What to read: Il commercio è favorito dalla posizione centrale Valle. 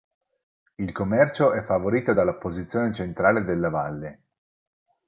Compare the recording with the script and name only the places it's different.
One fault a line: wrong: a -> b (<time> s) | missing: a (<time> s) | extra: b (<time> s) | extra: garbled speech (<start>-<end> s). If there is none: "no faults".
extra: della (3.4 s)